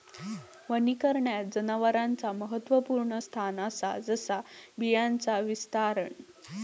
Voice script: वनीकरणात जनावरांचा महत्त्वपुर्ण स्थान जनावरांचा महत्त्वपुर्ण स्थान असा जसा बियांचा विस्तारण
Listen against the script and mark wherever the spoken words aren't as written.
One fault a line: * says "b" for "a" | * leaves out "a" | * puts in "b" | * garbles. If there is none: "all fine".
* leaves out "जनावरांचा महत्त्वपुर्ण स्थान"